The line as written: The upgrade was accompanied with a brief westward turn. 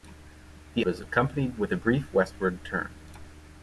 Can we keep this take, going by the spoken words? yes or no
no